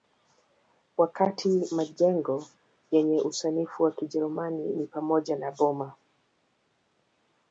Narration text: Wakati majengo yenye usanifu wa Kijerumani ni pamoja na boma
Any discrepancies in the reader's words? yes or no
no